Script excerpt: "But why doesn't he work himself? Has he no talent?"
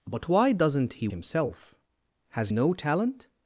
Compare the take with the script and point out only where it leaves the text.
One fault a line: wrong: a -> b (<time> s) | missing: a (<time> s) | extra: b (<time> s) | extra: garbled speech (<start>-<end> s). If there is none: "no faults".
missing: work (1.1 s)
missing: he (2.5 s)